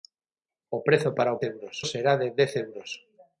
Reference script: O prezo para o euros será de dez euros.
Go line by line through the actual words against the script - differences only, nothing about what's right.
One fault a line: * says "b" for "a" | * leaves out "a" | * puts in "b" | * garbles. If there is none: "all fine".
all fine